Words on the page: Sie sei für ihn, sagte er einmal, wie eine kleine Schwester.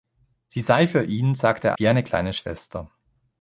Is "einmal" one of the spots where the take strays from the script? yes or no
yes